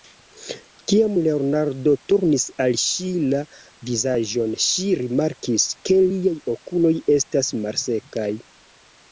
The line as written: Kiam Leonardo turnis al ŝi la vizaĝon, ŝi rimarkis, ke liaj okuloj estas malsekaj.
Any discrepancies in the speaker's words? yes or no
no